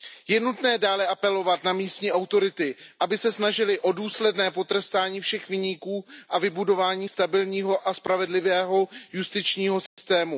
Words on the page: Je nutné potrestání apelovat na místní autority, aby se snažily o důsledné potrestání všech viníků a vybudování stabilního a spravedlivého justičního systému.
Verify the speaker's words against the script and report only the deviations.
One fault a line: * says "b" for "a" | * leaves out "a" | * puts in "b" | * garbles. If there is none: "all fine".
* says "dále" for "potrestání"